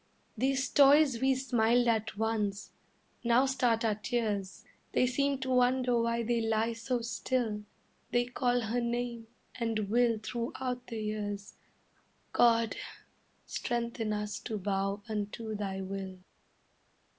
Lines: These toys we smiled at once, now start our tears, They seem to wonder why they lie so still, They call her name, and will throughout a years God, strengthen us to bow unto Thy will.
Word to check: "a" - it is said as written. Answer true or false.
false